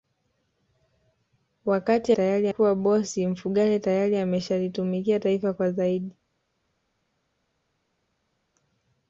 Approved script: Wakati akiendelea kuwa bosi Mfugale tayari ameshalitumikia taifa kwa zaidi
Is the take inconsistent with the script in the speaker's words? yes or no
yes